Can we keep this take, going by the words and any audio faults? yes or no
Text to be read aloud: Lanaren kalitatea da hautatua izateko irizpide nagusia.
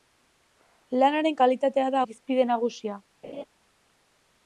no